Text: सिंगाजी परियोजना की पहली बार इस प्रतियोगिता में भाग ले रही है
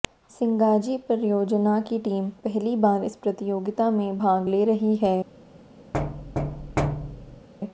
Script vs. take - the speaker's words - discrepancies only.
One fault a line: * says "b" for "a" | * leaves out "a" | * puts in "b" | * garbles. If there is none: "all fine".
* puts in "टीम"